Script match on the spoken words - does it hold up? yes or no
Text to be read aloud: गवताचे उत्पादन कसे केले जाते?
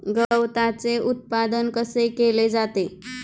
yes